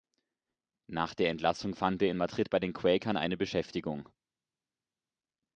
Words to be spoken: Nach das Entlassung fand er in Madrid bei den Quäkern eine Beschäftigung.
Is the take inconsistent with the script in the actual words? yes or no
yes